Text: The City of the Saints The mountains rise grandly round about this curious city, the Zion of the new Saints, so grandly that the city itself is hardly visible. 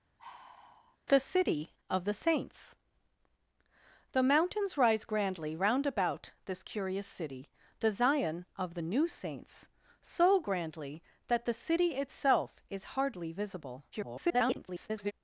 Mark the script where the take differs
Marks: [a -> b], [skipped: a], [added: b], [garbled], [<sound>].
[sigh] The City of the Saints The mountains rise grandly round about this curious city, the Zion of the new Saints, so grandly that the city itself is hardly visible. [garbled]